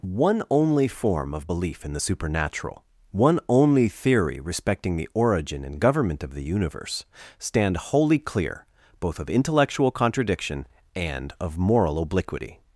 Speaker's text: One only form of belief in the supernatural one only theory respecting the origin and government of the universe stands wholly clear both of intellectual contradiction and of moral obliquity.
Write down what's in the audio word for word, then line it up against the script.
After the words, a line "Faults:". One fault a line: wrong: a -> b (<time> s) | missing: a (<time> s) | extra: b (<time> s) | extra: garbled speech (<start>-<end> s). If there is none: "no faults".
One only form of belief in the supernatural one only theory respecting the origin and government of the universe stand wholly clear both of intellectual contradiction and of moral obliquity.
Faults:
wrong: stands -> stand (7.4 s)